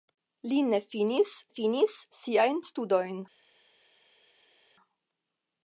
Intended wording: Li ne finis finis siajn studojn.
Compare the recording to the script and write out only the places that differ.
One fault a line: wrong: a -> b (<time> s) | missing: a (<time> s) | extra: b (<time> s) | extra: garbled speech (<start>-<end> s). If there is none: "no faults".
no faults